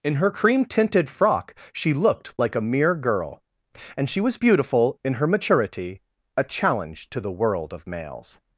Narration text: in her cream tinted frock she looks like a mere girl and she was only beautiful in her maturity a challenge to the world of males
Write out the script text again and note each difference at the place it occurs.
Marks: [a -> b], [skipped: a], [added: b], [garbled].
in her cream tinted frock she [looks -> looked] like a mere girl and she was [skipped: only] beautiful in her maturity a challenge to the world of males